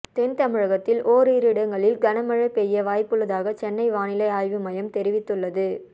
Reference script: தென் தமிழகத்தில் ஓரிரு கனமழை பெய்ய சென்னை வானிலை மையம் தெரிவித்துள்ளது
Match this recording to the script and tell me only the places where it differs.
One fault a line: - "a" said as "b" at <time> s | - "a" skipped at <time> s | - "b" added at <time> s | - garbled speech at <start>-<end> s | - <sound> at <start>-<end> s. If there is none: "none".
- "இடங்களில்" added at 1.5 s
- "வாய்ப்புள்ளதாக" added at 2.8 s
- "ஆய்வு" added at 4.3 s